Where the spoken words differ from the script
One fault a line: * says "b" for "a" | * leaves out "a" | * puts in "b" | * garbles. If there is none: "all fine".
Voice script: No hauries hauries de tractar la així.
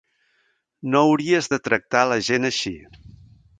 * leaves out "hauries"
* puts in "gent"